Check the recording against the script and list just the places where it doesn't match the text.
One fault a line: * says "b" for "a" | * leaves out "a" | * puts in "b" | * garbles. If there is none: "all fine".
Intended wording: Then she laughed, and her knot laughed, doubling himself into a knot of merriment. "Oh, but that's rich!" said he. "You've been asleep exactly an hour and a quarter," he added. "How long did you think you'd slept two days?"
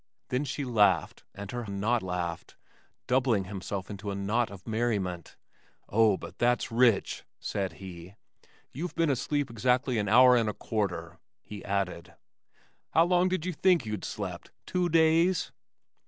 all fine